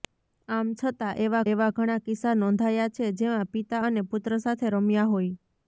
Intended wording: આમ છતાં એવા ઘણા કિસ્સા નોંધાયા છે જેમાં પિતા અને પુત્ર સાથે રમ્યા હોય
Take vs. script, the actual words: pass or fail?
fail